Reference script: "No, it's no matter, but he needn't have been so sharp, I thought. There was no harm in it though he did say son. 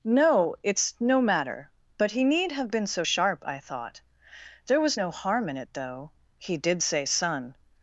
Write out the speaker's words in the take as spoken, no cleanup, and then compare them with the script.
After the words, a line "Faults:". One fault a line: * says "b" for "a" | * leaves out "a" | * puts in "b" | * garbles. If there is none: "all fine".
"No, it's no matter, but he need have been so sharp, I thought. There was no harm in it though he did say son.
Faults:
* says "need" for "needn't"